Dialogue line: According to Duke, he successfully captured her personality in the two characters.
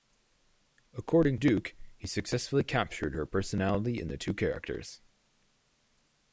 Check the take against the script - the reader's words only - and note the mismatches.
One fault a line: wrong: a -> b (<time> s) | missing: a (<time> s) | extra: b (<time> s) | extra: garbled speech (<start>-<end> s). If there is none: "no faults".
missing: to (1.4 s)